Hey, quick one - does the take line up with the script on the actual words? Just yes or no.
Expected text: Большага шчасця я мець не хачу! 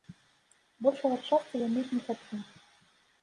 yes